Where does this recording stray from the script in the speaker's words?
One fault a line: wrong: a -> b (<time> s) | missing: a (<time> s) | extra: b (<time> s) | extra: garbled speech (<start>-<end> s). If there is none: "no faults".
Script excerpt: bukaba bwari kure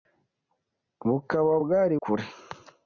no faults